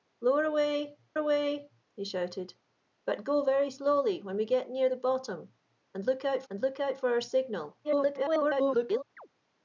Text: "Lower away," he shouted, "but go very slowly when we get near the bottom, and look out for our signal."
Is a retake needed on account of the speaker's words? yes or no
yes